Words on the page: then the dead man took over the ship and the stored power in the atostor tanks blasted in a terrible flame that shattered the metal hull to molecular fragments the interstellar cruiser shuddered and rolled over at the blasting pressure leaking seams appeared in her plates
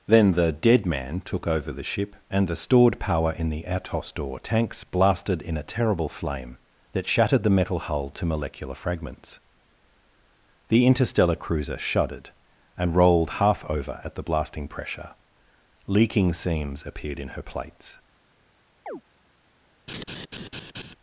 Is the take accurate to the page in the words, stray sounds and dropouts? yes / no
no